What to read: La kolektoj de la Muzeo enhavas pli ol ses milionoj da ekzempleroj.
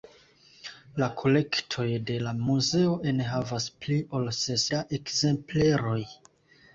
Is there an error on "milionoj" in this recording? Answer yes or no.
yes